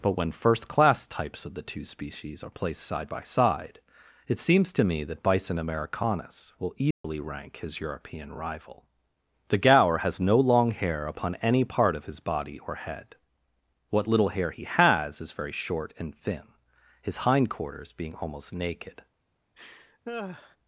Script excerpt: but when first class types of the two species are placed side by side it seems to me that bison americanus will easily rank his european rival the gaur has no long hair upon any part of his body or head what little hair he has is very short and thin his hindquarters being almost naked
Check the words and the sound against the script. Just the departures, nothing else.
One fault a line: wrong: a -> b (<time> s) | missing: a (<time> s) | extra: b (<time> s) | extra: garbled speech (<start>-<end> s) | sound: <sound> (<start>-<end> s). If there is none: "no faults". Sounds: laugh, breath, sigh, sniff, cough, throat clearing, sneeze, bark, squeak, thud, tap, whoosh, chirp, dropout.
sound: dropout (6.9-7.0 s)
sound: laugh (19.6-20.6 s)